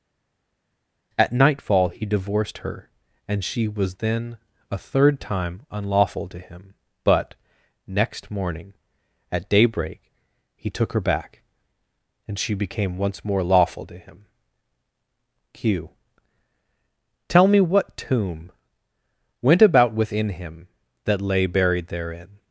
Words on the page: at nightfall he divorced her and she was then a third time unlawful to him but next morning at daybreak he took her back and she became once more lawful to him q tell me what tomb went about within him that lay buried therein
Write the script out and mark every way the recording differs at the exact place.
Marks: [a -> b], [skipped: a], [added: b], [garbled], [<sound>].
at nightfall he divorced her and she was then a third time unlawful to him but next morning at daybreak he took her back and she became once more lawful to him q tell me what tomb went about within him that lay buried therein